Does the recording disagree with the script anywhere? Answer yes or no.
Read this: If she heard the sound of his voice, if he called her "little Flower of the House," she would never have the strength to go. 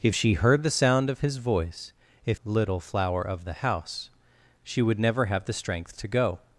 yes